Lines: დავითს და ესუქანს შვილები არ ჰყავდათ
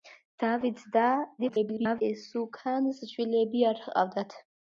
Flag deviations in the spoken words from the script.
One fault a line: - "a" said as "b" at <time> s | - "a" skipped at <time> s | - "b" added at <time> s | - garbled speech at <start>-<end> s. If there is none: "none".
- garbled speech at 1.4-2.0 s